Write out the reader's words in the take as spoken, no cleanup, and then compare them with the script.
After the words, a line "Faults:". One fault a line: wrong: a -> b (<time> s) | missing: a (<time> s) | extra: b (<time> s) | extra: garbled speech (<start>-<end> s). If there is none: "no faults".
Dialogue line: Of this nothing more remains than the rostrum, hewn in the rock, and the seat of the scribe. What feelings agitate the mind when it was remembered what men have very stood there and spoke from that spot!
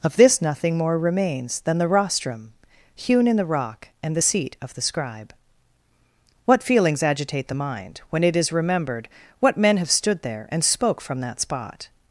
Of this nothing more remains than the rostrum, hewn in the rock, and the seat of the scribe. What feelings agitate the mind when it is remembered what men have stood there and spoke from that spot!
Faults:
wrong: was -> is (8.3 s)
missing: very (9.9 s)